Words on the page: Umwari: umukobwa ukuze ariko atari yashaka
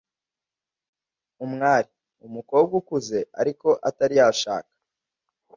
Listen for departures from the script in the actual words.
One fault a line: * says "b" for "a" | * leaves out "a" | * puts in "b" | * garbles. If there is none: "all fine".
all fine